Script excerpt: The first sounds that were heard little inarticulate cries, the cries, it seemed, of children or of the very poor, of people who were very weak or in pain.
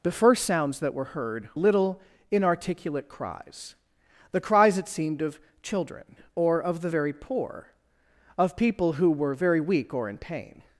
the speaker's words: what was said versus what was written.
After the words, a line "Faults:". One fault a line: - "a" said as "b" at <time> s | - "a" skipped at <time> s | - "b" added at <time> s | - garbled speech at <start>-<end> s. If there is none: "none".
The first sounds that were heard little inarticulate cries, the cries, it seemed, of children or of the very poor, of people who were very weak or in pain.
Faults:
none